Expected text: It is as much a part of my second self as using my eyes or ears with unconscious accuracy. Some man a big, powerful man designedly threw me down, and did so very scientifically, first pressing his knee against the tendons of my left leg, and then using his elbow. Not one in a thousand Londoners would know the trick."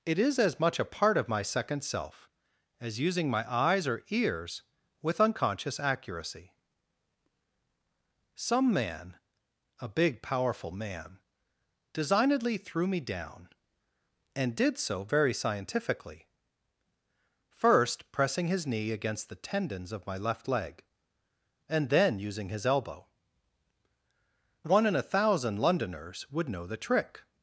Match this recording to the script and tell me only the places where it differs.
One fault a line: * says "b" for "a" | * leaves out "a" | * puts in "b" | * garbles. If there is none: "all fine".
* leaves out "Not"